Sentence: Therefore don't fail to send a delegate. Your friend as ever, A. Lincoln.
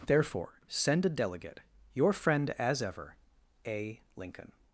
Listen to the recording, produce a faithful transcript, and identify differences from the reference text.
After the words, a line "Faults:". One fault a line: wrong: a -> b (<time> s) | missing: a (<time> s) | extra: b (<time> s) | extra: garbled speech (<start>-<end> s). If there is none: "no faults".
Therefore send a delegate. Your friend as ever, A. Lincoln.
Faults:
missing: don't fail to (0.6 s)